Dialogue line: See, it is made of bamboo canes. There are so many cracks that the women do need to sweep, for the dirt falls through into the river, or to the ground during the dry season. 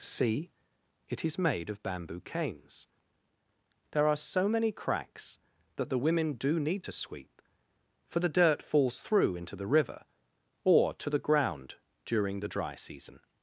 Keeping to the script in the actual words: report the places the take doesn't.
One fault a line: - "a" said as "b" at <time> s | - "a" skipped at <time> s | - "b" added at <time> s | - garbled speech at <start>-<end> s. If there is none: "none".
none